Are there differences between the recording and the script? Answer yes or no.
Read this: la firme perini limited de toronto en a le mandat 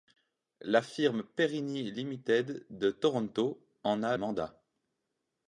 yes